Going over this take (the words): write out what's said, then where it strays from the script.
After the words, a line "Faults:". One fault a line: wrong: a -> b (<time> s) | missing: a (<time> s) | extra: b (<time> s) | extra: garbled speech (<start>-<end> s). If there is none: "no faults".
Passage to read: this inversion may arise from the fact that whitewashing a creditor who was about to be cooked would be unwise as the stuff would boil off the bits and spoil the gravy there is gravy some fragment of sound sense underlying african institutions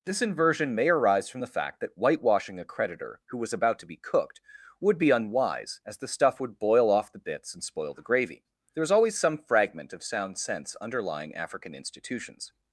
this inversion may arise from the fact that whitewashing a creditor who was about to be cooked would be unwise as the stuff would boil off the bits and spoil the gravy there is always some fragment of sound sense underlying african institutions
Faults:
wrong: gravy -> always (8.9 s)